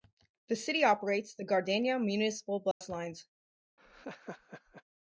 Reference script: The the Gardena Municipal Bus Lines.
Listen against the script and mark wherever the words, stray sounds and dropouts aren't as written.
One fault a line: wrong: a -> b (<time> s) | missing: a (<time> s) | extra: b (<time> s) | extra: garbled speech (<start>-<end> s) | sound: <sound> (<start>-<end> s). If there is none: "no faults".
extra: city operates (0.6 s)
sound: dropout (2.7-2.8 s)
sound: laugh (3.8-4.8 s)